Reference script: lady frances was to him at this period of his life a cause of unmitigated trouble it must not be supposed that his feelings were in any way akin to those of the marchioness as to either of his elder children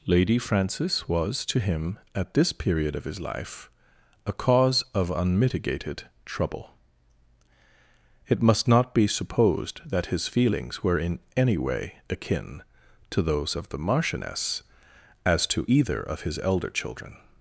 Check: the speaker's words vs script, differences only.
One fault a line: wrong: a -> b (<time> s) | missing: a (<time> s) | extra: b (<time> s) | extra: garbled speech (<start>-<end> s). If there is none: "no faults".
no faults